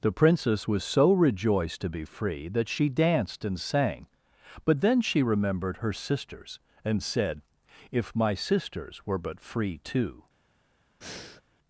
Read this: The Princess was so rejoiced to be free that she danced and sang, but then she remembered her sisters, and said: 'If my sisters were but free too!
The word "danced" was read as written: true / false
true